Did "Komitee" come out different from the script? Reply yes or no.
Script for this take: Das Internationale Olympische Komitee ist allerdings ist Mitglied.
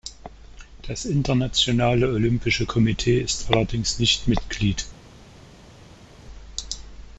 no